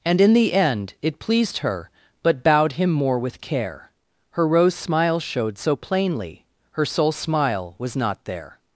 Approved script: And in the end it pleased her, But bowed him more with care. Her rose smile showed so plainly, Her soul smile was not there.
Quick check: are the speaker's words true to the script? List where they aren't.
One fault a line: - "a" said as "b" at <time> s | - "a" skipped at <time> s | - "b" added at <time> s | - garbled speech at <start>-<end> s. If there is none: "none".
none